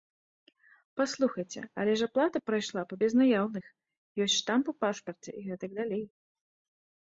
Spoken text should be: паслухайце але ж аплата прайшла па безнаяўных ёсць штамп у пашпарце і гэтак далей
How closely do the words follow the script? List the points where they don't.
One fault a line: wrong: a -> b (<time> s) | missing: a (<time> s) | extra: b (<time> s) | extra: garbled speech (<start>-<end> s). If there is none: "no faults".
no faults